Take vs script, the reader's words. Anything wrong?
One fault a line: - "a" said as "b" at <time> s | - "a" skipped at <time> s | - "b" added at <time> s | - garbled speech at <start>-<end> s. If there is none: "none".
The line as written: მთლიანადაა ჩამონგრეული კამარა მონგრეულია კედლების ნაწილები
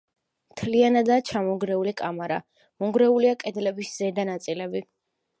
- "ზედა" added at 4.0 s